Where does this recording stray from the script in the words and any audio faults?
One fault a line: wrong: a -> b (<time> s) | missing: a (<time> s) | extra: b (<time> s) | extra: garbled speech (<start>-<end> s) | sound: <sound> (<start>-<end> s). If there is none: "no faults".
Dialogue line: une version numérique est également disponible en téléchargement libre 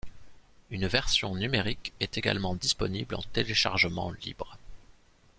no faults